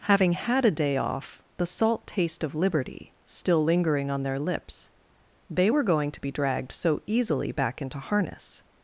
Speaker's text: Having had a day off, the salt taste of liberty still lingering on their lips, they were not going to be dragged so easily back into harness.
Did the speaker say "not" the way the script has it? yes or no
no